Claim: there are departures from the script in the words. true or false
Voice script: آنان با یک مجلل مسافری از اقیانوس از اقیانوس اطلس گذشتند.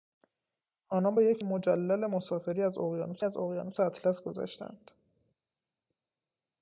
false